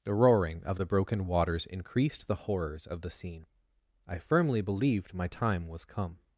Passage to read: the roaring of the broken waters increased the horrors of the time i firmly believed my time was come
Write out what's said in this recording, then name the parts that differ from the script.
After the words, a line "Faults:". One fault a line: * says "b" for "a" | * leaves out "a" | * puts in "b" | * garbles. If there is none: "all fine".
the roaring of the broken waters increased the horrors of the scene i firmly believed my time was come
Faults:
* says "scene" for "time"